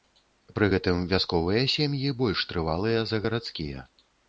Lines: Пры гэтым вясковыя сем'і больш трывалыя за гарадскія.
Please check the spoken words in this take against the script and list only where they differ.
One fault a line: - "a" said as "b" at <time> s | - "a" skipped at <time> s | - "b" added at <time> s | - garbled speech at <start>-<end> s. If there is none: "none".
none